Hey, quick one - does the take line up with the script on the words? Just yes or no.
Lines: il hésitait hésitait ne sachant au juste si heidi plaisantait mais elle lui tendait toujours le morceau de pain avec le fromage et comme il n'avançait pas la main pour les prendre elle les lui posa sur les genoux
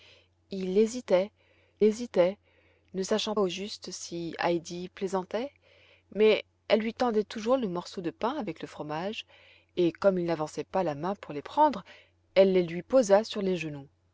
yes